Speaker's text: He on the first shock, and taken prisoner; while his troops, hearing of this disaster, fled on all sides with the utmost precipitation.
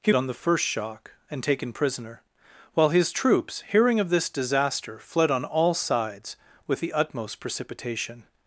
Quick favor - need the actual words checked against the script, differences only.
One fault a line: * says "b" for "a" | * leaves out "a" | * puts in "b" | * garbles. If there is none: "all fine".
all fine